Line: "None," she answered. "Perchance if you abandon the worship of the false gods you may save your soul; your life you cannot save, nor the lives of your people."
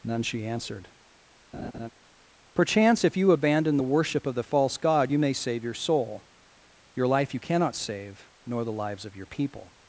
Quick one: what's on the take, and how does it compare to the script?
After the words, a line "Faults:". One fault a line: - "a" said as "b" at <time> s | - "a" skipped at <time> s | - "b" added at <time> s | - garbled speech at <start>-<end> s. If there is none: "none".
"None," she answered. "Perchance if you abandon the worship of the false god you may save your soul; your life you cannot save, nor the lives of your people."
Faults:
- "gods" said as "god" at 4.8 s